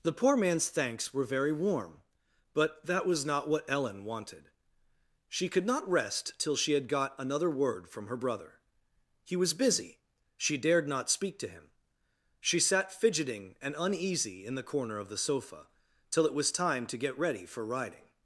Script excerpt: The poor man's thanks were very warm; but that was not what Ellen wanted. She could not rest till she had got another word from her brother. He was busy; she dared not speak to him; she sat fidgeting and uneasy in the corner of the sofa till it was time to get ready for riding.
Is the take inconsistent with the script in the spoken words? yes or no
no